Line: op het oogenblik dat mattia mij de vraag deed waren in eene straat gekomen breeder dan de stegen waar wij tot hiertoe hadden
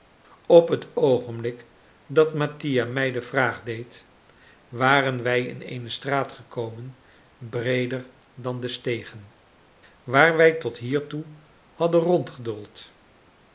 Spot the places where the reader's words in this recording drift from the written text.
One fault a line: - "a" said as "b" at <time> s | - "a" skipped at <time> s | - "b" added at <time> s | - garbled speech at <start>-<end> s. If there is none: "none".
- "wij" added at 5.2 s